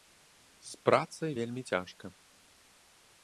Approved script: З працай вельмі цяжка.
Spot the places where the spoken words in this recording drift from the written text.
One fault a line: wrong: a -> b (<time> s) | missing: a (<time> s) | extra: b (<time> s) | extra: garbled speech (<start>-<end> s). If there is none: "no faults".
no faults